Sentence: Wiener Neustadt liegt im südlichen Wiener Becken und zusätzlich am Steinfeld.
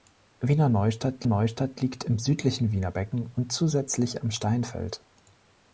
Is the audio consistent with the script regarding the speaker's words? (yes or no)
no